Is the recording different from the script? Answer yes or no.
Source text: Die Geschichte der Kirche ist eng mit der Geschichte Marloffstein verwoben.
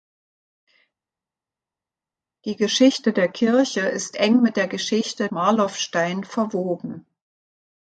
no